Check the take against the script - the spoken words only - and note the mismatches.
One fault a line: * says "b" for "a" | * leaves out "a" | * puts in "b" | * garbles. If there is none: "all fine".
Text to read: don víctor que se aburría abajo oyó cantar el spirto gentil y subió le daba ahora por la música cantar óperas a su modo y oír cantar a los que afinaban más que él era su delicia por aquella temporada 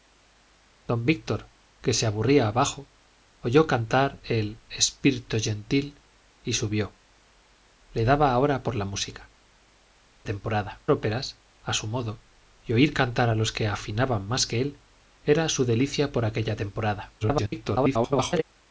* says "temporada" for "cantar"
* garbles